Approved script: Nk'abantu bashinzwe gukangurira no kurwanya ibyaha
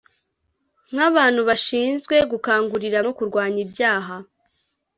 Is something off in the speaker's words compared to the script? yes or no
no